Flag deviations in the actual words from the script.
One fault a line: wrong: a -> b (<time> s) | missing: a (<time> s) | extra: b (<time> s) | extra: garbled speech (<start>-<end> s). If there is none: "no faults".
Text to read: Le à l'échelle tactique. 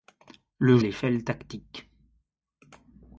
no faults